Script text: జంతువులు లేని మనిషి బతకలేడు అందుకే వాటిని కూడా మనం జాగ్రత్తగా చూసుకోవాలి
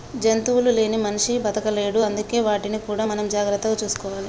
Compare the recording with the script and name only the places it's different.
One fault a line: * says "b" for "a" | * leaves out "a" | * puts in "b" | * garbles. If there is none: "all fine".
all fine